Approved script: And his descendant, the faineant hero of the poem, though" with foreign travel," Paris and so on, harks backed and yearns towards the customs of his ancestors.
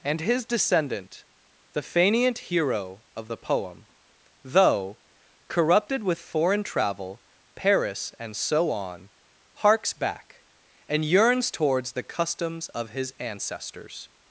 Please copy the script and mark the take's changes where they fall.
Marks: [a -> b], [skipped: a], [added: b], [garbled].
And his descendant, the faineant hero of the poem, though" [added: corrupted] with foreign travel," Paris and so on, harks [backed -> back] and yearns towards the customs of his ancestors.